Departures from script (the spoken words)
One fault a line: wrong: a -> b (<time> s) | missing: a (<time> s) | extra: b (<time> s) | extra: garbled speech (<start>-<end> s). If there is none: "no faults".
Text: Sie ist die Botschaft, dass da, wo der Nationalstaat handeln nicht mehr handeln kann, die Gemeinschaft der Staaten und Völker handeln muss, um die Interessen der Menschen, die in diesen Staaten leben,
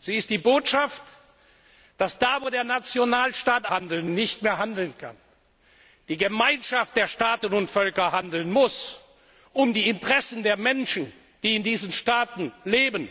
no faults